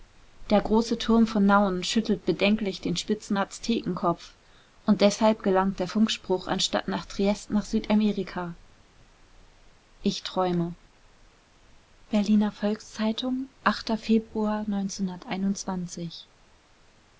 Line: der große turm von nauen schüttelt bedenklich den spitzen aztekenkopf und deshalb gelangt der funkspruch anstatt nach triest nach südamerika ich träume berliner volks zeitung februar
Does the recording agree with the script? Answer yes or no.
yes